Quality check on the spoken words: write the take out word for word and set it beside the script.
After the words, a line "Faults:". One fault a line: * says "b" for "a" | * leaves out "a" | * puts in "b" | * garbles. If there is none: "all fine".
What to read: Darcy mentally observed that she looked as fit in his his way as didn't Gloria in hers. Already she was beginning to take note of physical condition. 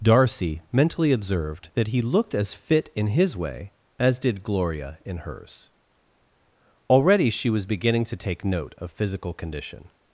Darcy mentally observed that he looked as fit in his way as did Gloria in hers. Already she was beginning to take note of physical condition.
Faults:
* says "he" for "she"
* leaves out "his"
* says "did" for "didn't"